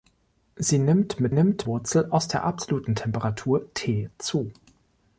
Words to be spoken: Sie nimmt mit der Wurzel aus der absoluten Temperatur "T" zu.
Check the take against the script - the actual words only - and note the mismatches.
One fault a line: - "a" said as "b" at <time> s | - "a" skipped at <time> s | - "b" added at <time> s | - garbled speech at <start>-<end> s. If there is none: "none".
- "der" said as "nimmt" at 1.3 s